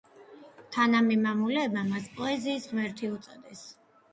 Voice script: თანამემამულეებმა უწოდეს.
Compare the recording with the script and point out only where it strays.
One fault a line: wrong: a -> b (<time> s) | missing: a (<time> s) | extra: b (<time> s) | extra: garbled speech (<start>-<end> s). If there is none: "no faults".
extra: მას პოეზიის ღმერთი (1.9 s)